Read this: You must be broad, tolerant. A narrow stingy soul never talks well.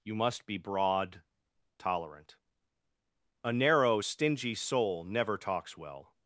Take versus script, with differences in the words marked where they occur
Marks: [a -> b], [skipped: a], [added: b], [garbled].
You must be broad, tolerant. A narrow stingy soul never talks well.